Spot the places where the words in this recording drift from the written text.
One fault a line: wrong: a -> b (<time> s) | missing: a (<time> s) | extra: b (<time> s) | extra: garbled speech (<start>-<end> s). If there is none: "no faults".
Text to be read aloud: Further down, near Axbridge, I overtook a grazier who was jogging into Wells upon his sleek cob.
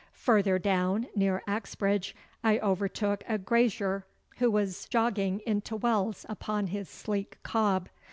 no faults